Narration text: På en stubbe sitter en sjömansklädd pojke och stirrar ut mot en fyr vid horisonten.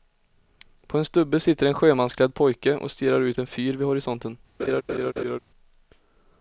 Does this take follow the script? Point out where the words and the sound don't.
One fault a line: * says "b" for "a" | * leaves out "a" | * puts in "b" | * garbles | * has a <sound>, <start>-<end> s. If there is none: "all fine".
* leaves out "mot"
* has a laugh, 4.6-5.4 s